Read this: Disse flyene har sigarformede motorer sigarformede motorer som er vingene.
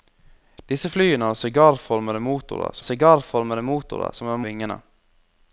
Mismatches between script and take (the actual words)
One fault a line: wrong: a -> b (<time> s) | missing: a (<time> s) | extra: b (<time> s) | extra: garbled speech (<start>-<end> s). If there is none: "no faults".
no faults